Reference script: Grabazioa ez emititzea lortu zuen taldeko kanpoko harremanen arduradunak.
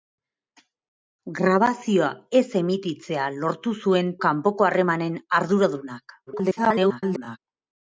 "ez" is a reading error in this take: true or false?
false